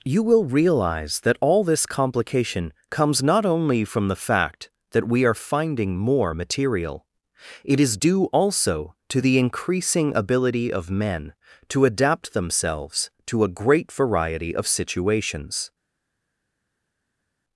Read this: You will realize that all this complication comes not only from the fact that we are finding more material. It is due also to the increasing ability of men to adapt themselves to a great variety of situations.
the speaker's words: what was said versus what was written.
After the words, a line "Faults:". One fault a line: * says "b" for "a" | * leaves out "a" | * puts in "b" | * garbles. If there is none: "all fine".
You will realize that all this complication comes not only from the fact that we are finding more material. It is due also to the increasing ability of men to adapt themselves to a great variety of situations.
Faults:
all fine